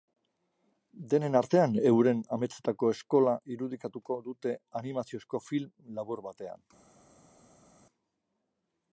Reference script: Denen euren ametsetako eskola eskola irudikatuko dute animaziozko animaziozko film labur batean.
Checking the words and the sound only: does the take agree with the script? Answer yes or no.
no